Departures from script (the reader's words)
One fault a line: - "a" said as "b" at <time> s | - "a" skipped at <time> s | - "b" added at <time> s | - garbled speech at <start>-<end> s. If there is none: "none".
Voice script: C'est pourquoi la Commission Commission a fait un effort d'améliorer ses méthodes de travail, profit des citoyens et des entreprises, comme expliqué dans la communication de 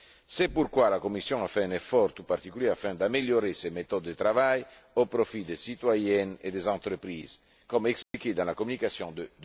- "Commission" skipped at 1.4 s
- "tout particulier afin" added at 2.1 s
- "au" added at 5.0 s